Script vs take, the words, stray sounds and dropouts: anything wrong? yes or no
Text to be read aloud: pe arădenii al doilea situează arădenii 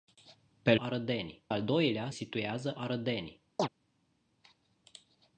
yes